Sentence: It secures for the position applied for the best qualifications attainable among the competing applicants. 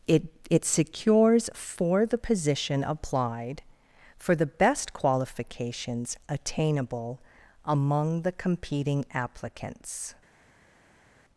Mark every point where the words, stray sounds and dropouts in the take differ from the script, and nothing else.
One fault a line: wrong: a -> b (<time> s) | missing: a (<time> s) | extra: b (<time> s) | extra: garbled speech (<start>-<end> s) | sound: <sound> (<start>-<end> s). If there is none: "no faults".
extra: it (0.5 s)